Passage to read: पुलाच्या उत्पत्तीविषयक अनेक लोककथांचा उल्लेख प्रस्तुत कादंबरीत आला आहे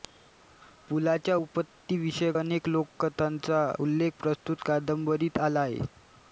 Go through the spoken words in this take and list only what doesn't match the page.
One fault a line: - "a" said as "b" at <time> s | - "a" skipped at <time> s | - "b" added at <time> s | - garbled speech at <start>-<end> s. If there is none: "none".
none